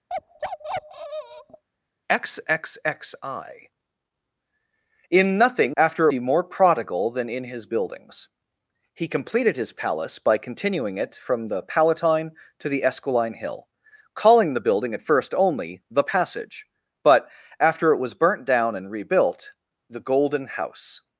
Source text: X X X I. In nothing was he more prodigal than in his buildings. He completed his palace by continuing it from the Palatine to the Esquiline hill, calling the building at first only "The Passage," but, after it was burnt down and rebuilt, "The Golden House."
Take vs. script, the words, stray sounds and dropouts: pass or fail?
fail